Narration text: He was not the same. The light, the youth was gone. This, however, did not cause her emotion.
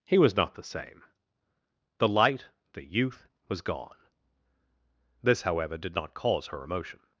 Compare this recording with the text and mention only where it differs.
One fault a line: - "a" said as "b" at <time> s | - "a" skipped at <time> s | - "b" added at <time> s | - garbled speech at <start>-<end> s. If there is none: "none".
none